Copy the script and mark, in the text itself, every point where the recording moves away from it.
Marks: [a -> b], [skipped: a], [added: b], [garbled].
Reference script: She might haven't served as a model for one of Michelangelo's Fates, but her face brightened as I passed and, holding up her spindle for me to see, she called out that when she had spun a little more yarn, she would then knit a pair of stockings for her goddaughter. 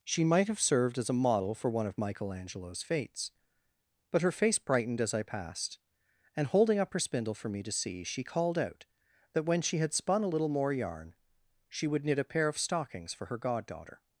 She might [haven't -> have] served as a model for one of Michelangelo's Fates, but her face brightened as I passed and, holding up her spindle for me to see, she called out that when she had spun a little more yarn, she would [skipped: then] knit a pair of stockings for her goddaughter.